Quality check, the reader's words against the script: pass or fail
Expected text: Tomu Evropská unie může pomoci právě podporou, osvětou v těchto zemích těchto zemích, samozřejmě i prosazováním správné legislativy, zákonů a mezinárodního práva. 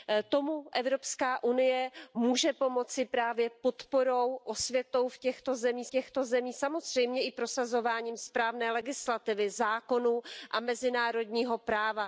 pass